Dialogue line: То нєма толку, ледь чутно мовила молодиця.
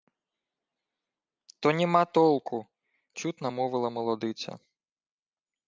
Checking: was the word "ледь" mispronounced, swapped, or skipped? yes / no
yes